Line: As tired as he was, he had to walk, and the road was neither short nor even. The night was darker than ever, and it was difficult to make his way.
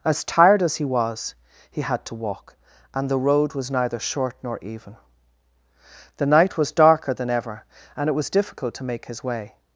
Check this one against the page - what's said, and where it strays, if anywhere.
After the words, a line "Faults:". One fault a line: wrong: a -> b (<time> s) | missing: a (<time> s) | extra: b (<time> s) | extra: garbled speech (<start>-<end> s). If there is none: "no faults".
As tired as he was, he had to walk, and the road was neither short nor even. The night was darker than ever, and it was difficult to make his way.
Faults:
no faults